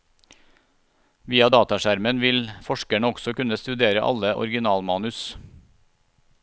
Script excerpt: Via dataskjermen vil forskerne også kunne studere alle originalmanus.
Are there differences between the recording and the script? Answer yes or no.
no